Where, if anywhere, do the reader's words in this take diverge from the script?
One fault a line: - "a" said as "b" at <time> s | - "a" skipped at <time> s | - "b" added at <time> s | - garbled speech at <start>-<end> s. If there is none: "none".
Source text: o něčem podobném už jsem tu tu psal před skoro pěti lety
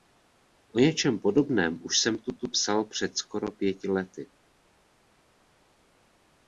none